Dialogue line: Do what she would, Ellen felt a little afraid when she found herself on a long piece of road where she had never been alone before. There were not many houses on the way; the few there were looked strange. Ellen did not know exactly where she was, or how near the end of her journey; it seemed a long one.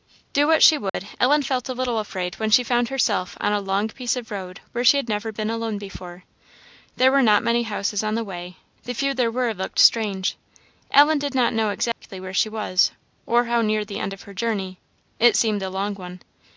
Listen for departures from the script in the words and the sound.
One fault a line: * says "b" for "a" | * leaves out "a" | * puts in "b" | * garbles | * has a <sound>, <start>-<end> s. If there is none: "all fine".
* has a dropout, 0.9-0.9 s
* has a dropout, 11.9-12.0 s